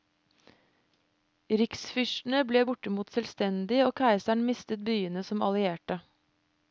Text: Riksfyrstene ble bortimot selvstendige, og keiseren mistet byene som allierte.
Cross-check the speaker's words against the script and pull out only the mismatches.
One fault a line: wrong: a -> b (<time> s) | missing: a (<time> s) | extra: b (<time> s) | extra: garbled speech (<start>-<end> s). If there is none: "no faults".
no faults